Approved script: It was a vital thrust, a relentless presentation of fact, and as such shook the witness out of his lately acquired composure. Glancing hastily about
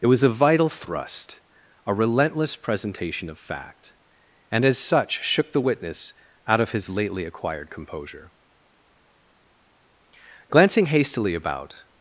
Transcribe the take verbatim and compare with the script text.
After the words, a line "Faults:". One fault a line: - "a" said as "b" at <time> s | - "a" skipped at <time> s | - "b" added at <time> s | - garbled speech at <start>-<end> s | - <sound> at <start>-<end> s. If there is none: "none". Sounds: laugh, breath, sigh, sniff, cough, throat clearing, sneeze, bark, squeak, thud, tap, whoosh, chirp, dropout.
It was a vital thrust, a relentless presentation of fact, and as such shook the witness out of his lately acquired composure. Glancing hastily about
Faults:
none